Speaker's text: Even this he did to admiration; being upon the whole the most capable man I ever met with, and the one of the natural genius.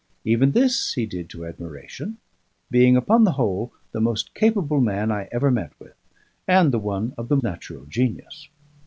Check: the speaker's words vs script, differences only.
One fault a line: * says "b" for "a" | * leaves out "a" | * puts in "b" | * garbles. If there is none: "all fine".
all fine